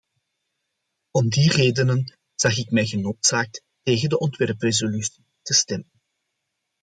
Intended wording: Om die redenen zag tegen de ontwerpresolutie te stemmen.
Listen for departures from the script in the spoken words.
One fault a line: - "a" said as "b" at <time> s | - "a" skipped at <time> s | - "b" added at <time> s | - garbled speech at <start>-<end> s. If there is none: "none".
- "ik mij genoodzaakt" added at 2.6 s